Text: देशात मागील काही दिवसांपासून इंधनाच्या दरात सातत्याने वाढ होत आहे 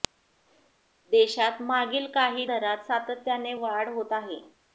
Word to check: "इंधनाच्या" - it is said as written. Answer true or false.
false